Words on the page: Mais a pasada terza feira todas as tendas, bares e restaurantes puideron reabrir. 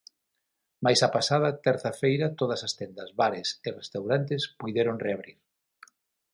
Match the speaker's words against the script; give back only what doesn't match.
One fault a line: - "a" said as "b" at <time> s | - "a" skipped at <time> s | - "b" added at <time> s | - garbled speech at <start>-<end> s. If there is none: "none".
none